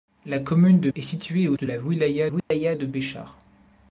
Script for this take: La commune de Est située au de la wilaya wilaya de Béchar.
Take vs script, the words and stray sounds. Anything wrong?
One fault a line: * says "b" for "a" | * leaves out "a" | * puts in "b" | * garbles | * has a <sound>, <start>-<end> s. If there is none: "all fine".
* has a dropout, 2.4-2.5 s